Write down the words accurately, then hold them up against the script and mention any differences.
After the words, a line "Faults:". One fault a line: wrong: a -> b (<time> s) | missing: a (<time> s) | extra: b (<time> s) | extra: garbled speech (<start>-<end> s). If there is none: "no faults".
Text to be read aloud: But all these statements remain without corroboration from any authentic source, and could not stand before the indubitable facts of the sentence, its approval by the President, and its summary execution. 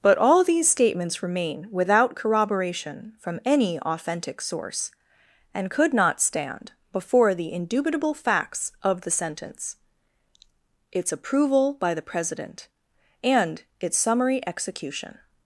But all these statements remain without corroboration from any authentic source, and could not stand before the indubitable facts of the sentence, its approval by the President, and its summary execution.
Faults:
no faults